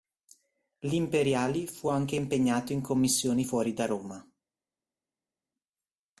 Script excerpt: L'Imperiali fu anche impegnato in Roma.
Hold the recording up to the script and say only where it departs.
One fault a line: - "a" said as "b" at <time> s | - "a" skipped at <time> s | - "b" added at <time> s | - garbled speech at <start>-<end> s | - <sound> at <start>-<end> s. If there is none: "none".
- "commissioni fuori da" added at 2.8 s